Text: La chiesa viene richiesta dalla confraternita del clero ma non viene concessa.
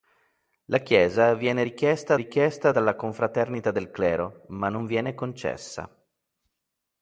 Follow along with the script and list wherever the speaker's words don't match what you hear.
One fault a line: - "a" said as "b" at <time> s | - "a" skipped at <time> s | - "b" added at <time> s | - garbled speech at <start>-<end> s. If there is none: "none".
- "richiesta" added at 2.1 s